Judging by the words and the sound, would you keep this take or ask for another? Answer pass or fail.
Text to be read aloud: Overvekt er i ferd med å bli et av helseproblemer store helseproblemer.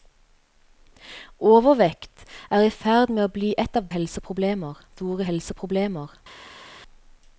pass